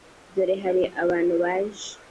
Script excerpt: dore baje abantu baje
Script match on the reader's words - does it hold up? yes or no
no